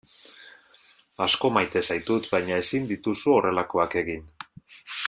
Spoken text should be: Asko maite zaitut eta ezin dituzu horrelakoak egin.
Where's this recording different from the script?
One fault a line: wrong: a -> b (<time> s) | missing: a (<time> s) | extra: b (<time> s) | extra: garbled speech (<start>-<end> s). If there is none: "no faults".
wrong: eta -> baina (2.4 s)